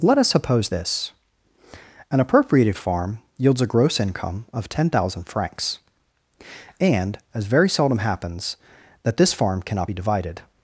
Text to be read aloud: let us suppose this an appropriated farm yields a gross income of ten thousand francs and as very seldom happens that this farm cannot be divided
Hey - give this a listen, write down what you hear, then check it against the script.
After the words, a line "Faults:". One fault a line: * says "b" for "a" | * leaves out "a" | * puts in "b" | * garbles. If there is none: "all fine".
let us suppose this an appropriated farm yields a gross income of ten thousand francs and as very seldom happens that this farm cannot be divided
Faults:
all fine